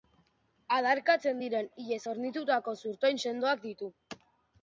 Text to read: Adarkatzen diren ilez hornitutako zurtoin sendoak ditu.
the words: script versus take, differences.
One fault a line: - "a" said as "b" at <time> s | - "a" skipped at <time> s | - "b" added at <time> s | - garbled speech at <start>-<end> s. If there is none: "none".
none